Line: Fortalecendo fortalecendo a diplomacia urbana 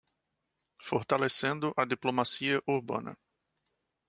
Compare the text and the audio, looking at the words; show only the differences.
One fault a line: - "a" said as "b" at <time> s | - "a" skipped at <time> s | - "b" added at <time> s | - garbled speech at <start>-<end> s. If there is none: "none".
- "fortalecendo" skipped at 1.8 s